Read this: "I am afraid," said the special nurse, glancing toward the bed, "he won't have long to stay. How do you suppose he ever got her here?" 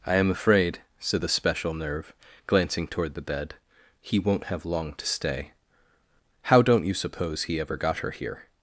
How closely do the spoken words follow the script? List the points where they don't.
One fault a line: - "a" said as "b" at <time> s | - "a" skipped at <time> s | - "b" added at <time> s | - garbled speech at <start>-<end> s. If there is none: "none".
- "nurse" said as "nerve" at 1.7 s
- "do" said as "don't" at 6.6 s